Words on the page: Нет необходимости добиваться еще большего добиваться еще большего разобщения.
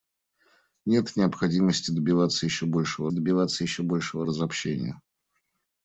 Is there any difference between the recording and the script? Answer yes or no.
no